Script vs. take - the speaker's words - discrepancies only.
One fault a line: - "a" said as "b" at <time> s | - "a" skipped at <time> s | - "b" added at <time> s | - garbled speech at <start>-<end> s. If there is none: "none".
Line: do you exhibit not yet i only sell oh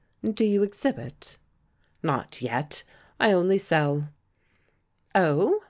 none